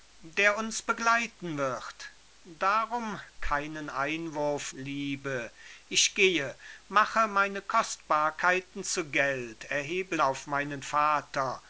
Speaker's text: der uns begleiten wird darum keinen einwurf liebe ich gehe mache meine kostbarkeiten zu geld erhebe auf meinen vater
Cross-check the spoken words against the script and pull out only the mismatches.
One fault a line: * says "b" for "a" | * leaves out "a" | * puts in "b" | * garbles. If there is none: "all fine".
all fine